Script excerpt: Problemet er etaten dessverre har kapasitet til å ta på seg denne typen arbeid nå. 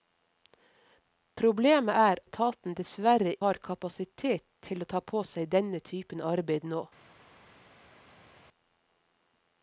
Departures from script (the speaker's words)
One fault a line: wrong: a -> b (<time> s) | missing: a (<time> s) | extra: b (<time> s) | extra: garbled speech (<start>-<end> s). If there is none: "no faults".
no faults